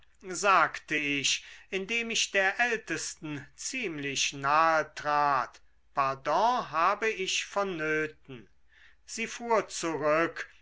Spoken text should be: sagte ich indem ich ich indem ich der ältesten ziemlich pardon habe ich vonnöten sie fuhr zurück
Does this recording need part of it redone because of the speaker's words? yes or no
yes